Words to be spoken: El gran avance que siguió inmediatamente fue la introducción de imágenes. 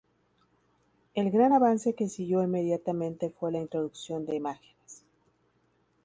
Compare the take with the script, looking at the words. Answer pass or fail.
pass